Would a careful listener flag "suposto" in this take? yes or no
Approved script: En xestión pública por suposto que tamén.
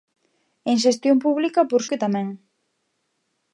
yes